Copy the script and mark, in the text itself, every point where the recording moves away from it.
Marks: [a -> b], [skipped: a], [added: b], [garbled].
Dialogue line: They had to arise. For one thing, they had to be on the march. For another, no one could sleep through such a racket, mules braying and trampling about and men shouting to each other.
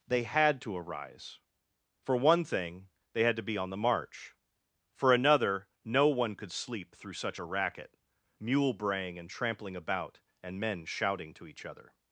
They had to arise. For one thing, they had to be on the march. For another, no one could sleep through such a racket, [mules -> mule] braying and trampling about and men shouting to each other.